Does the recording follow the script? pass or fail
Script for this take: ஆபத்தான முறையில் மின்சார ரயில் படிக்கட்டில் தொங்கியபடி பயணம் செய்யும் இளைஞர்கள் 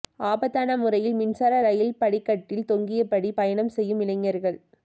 pass